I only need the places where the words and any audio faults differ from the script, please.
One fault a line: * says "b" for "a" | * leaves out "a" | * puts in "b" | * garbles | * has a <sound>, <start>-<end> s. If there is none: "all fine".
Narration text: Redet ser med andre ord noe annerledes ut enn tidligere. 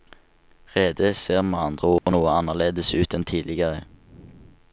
* has a dropout, 2.0-2.1 s